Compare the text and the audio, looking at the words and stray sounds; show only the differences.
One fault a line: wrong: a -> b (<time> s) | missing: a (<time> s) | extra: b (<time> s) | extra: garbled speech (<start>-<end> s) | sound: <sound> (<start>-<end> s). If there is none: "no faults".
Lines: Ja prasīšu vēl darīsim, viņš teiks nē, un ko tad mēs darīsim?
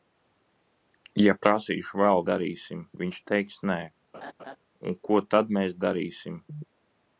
sound: laugh (4.1-4.6 s)